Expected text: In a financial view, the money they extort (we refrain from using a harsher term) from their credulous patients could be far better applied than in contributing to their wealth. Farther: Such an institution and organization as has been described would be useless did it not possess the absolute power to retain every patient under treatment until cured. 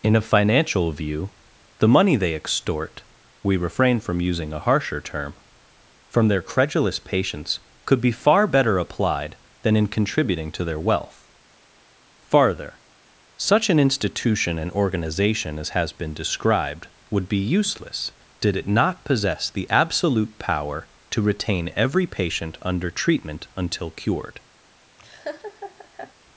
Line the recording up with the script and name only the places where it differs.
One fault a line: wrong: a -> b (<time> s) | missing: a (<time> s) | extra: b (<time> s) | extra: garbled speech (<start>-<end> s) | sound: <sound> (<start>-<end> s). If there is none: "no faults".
sound: laugh (25.0-26.1 s)